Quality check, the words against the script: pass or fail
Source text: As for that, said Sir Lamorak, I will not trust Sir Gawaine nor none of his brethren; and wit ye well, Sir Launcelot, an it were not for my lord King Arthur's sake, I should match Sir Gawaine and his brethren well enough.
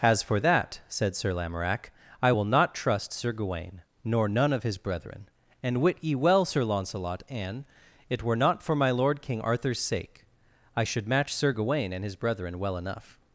pass